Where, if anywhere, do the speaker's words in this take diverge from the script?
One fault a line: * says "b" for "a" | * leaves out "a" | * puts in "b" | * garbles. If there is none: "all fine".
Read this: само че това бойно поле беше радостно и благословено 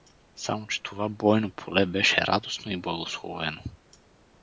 all fine